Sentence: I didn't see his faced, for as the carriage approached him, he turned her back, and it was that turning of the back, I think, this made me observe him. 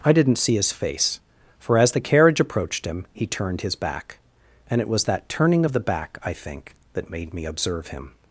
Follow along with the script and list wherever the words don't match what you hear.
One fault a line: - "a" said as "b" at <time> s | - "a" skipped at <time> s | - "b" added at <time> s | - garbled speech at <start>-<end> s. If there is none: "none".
- "faced" said as "face" at 0.7 s
- "her" said as "his" at 3.6 s
- "this" said as "that" at 6.9 s